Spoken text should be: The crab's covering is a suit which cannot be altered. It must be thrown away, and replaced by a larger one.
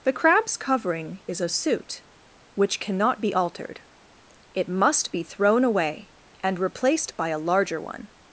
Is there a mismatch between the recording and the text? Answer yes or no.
no